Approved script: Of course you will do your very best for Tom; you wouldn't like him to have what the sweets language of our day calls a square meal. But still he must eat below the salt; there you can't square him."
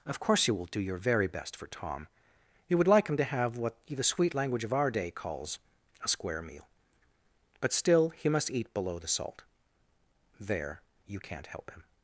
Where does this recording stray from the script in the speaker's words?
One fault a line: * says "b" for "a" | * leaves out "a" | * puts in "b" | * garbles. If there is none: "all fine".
* says "would" for "wouldn't"
* says "sweet" for "sweets"
* says "help" for "square"